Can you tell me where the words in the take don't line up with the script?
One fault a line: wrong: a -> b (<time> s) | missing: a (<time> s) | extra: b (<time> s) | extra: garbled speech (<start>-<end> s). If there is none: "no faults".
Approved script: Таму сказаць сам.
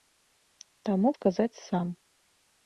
no faults